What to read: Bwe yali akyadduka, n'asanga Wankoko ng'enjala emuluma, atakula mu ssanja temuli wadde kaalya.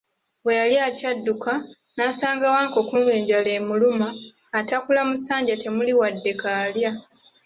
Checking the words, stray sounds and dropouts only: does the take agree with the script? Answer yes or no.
yes